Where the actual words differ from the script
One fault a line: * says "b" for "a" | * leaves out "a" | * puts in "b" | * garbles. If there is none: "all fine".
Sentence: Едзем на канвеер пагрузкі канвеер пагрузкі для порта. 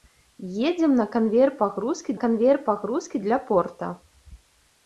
all fine